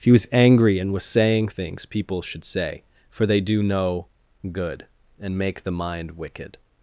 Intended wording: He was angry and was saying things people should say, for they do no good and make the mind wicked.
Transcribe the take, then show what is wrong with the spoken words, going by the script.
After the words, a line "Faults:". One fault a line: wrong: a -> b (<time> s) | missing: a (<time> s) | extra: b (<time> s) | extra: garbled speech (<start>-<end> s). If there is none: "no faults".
He was angry and was saying things people should say, for they do no good and make the mind wicked.
Faults:
no faults